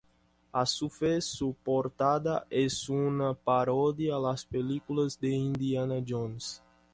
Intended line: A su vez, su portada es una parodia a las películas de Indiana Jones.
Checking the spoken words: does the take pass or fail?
pass